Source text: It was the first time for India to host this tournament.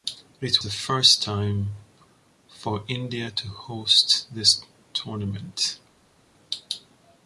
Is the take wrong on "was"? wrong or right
wrong